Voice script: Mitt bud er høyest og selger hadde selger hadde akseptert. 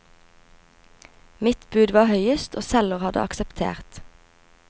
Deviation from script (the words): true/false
true